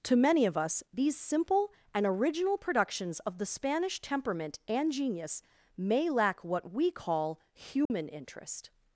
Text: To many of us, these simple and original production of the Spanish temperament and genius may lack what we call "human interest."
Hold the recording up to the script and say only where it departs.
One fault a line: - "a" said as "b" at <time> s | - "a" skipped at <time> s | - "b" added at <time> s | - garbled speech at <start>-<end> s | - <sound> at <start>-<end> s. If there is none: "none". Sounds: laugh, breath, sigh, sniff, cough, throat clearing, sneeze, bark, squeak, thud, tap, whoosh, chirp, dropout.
- "production" said as "productions" at 2.6 s
- dropout at 7.9-7.9 s